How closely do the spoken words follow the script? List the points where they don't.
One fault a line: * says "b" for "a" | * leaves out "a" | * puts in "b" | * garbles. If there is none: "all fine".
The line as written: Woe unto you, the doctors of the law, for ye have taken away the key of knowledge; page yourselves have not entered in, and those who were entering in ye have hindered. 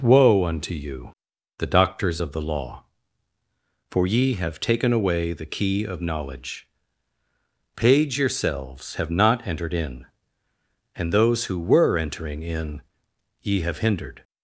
all fine